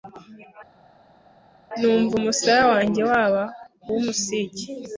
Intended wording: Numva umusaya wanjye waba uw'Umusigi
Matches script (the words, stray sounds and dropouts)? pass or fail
pass